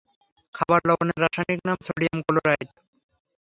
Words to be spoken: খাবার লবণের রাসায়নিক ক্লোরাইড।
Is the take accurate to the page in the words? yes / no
no